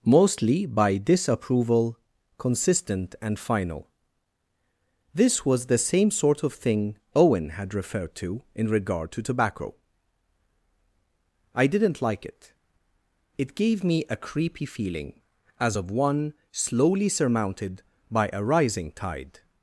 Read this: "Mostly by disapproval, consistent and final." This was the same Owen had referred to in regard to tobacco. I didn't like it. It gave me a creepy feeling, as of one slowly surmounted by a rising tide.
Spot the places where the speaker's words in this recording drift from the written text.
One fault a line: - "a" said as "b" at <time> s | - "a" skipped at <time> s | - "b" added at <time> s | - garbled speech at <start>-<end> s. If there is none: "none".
- "sort of thing" added at 6.1 s